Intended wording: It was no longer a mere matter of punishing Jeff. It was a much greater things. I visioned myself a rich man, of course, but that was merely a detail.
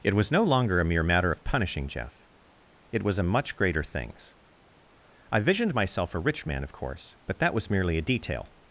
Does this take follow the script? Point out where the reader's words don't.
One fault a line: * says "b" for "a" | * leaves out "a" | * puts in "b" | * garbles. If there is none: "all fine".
all fine